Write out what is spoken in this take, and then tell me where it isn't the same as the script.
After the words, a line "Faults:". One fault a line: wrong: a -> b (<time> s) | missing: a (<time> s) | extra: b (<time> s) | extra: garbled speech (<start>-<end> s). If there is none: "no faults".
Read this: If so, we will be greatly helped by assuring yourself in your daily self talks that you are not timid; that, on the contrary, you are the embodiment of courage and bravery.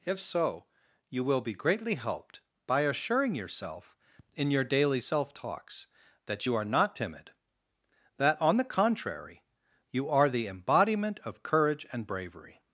If so, you will be greatly helped by assuring yourself in your daily self talks that you are not timid; that, on the contrary, you are the embodiment of courage and bravery.
Faults:
wrong: we -> you (1.1 s)